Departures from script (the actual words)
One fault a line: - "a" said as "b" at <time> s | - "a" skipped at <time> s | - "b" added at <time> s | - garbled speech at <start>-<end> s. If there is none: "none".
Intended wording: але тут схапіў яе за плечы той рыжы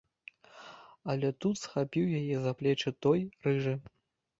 none